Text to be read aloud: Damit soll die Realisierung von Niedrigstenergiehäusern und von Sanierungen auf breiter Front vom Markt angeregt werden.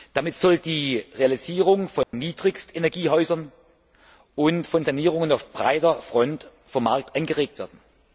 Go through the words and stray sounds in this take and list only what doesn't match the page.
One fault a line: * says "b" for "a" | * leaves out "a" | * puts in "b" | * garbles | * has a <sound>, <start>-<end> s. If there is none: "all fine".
* has a dropout, 2.0-2.1 s